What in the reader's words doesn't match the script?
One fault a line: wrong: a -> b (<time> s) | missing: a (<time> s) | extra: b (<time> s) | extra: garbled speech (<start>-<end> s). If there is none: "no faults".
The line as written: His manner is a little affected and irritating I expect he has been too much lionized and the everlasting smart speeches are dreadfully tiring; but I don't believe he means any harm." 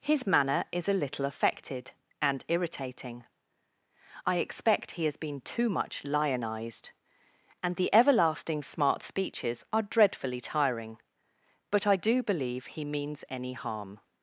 wrong: don't -> do (12.0 s)